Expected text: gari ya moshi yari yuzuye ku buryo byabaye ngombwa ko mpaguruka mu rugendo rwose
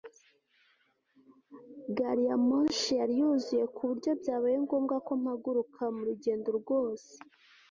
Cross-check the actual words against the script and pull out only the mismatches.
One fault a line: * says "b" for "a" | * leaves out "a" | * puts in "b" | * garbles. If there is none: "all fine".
all fine